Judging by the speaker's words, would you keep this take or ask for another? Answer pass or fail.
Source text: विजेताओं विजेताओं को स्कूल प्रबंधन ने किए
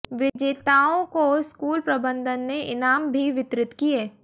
fail